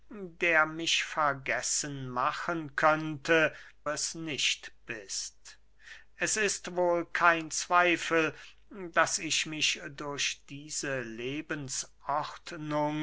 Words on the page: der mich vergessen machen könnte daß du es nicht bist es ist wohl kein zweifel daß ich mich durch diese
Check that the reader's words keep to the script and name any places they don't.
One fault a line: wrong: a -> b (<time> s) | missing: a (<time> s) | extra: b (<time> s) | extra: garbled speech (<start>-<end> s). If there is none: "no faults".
missing: daß du (3.5 s)